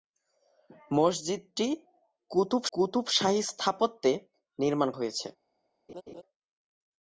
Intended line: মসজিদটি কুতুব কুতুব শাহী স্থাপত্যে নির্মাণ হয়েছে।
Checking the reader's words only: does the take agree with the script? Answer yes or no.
yes